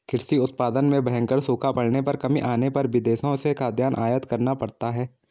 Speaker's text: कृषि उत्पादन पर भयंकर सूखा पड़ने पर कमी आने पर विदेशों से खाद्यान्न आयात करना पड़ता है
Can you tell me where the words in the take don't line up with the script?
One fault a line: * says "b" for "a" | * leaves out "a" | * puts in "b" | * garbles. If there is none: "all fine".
* says "में" for "पर"